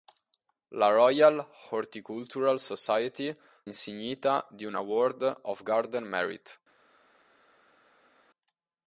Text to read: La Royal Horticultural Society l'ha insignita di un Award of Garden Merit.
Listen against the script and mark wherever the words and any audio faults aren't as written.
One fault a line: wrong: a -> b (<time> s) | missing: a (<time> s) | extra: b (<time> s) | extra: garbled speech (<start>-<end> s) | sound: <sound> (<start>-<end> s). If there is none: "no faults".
missing: l'ha (3.4 s)